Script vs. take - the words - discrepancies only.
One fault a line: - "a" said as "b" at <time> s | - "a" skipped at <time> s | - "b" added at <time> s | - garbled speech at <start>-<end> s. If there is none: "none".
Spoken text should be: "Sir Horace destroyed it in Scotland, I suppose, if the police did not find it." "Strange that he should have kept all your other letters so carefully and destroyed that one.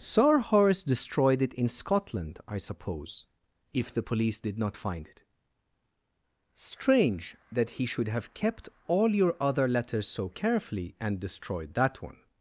none